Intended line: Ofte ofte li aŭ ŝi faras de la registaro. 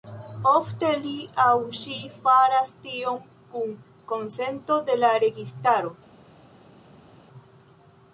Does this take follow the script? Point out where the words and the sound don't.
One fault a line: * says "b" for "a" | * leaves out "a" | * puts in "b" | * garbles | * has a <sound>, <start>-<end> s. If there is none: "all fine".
* leaves out "ofte"
* puts in "tion kun konsento"